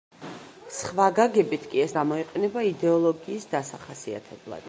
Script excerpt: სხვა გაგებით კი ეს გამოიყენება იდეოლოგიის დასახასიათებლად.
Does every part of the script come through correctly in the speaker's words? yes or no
yes